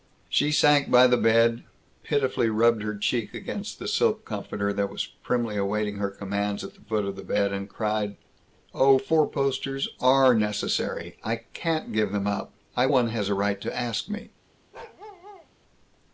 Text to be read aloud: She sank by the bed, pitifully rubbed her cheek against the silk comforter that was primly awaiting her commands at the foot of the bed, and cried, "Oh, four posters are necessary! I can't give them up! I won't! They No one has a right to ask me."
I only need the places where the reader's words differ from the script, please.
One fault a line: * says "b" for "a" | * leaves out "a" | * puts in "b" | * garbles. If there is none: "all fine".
* leaves out "won't They No"